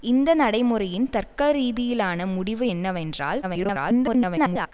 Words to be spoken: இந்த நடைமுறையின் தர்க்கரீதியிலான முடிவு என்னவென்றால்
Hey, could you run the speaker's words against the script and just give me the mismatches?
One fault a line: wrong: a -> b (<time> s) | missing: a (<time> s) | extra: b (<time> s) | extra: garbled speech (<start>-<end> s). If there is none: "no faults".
extra: garbled speech (3.4-4.7 s)